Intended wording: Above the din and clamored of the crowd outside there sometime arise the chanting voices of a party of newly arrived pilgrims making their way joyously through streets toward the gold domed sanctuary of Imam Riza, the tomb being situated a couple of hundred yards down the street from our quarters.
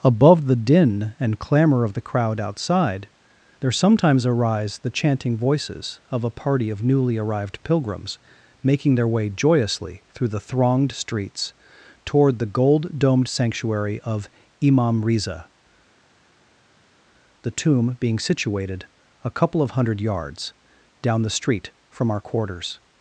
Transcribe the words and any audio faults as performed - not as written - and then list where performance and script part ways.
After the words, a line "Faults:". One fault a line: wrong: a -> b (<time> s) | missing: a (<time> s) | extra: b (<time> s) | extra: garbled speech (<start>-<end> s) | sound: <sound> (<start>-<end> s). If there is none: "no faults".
Above the din and clamor of the crowd outside there sometimes arise the chanting voices of a party of newly arrived pilgrims making their way joyously through the thronged streets toward the gold domed sanctuary of Imam Riza, the tomb being situated a couple of hundred yards down the street from our quarters.
Faults:
wrong: clamored -> clamor (1.4 s)
wrong: sometime -> sometimes (3.7 s)
extra: the thronged (10.3 s)